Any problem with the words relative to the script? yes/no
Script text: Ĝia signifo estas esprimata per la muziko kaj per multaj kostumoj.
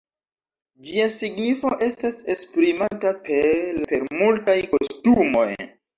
yes